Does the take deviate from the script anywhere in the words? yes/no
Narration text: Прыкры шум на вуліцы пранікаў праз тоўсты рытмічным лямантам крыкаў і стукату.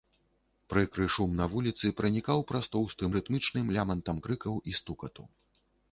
no